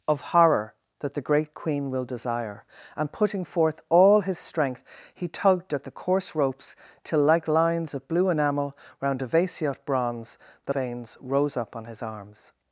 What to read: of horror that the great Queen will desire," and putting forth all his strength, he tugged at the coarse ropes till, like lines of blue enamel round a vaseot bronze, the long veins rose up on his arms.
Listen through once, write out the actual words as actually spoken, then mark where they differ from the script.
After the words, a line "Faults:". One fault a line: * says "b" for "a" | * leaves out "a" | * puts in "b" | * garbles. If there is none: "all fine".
of horror that the great Queen will desire," and putting forth all his strength, he tugged at the coarse ropes till, like lines of blue enamel round a vaseot bronze, the veins rose up on his arms.
Faults:
* leaves out "long"